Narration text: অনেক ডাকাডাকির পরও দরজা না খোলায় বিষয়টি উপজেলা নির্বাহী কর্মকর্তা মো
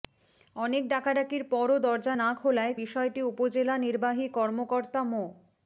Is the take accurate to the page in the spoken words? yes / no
yes